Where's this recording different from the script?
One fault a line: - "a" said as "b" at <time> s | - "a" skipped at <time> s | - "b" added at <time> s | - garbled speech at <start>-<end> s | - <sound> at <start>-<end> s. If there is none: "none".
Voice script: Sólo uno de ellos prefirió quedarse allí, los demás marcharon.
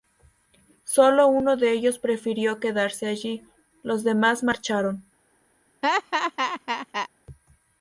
- laugh at 5.8-7.1 s